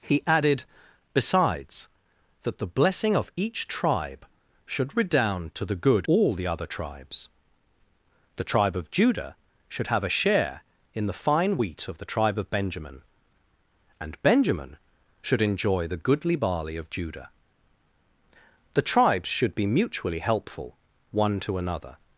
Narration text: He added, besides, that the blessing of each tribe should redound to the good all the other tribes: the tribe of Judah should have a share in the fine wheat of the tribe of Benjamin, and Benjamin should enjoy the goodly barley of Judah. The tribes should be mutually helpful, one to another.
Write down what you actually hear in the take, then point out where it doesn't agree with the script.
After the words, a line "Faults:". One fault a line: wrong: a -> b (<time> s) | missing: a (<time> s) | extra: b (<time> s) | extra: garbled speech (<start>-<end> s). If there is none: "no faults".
He added, besides, that the blessing of each tribe should redound to the good all the other tribes: the tribe of Judah should have a share in the fine wheat of the tribe of Benjamin, and Benjamin should enjoy the goodly barley of Judah. The tribes should be mutually helpful, one to another.
Faults:
no faults